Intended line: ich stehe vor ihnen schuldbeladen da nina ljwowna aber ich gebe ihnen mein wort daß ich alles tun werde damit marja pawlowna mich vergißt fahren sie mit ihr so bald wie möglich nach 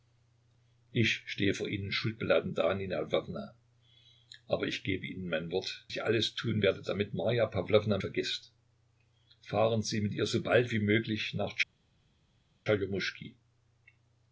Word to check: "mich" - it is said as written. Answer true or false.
false